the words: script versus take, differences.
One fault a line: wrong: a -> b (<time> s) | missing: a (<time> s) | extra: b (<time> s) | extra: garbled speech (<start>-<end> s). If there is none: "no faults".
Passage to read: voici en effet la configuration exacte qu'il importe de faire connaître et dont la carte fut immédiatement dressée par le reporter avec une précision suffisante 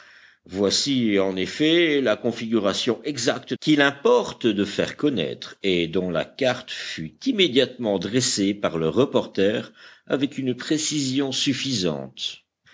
no faults